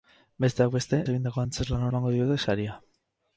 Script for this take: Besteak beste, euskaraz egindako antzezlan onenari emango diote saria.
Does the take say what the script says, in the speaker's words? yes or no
no